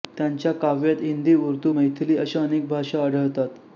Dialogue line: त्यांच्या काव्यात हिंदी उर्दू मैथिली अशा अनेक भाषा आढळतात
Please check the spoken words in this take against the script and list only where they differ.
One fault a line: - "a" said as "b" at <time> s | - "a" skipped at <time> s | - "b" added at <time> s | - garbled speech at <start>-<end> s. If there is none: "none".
none